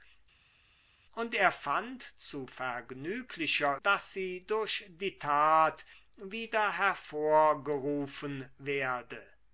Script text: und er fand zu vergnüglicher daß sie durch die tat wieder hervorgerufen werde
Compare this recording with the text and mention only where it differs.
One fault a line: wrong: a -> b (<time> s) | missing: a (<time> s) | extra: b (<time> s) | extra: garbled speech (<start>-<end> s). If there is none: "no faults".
no faults